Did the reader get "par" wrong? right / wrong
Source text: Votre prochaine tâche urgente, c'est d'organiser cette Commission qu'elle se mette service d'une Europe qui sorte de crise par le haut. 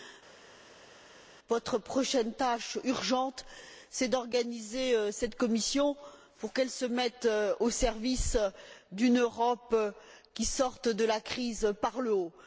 right